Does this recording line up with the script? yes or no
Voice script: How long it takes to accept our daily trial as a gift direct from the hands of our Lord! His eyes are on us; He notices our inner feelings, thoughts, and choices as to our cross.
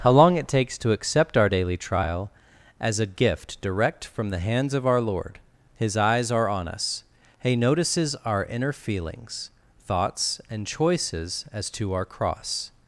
yes